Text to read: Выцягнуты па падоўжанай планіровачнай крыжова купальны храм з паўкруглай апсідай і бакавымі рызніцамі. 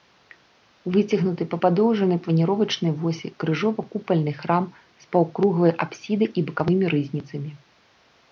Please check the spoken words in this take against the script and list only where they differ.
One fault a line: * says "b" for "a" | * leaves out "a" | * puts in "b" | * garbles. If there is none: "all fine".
* puts in "восі"